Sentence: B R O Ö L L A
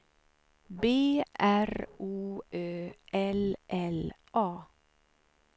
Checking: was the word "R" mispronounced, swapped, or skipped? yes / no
no